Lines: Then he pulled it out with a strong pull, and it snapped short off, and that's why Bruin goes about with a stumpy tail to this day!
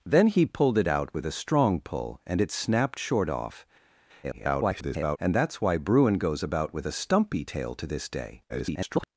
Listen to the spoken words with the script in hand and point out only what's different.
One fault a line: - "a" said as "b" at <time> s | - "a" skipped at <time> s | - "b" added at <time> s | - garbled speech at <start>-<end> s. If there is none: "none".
- garbled speech at 4.2-5.2 s
- garbled speech at 8.5-9.1 s